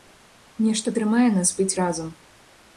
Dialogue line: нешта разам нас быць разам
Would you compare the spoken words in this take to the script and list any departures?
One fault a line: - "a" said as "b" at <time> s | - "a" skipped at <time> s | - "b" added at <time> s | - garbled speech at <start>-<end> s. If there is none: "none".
- "разам" said as "трымае" at 1.0 s